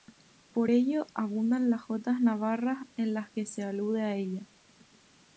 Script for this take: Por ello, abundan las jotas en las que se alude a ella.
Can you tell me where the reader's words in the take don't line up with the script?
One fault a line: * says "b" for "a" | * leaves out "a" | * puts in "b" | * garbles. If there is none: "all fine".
* puts in "navarras"